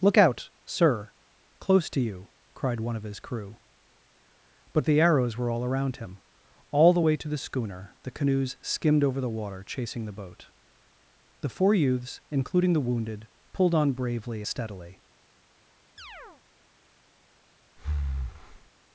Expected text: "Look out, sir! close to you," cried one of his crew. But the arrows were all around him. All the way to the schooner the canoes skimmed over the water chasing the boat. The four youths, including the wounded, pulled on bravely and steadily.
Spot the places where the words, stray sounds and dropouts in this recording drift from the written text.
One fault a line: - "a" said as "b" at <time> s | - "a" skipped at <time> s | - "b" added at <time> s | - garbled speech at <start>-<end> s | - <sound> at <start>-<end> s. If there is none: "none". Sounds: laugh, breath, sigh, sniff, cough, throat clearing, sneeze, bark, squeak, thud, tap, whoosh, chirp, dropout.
- "and" skipped at 14.4 s
- chirp at 16.0-16.4 s
- breath at 17.8-18.7 s